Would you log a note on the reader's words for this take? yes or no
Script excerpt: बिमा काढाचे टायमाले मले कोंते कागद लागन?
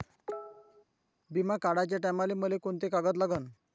no